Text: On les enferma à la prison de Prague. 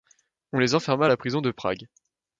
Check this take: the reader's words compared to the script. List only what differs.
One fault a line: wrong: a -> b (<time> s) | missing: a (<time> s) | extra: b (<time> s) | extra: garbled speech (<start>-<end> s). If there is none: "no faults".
no faults